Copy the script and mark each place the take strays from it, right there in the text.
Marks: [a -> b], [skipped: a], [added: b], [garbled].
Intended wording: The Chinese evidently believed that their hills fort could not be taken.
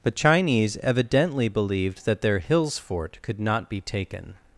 The Chinese evidently believed that their hills fort could not be taken.